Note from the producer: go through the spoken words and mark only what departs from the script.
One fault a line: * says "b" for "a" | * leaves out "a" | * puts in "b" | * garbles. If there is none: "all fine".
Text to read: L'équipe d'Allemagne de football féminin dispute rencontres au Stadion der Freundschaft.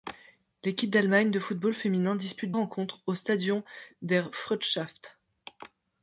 all fine